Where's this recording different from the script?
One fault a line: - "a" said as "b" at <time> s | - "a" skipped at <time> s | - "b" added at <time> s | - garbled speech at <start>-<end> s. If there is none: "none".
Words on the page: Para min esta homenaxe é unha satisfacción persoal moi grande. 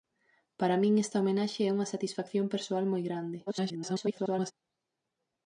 - garbled speech at 3.5-4.5 s